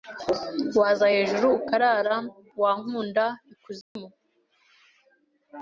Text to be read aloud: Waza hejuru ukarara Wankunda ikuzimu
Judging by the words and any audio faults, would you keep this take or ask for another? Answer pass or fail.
fail